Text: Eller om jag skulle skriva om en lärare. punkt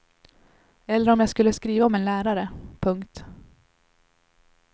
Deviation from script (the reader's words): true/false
false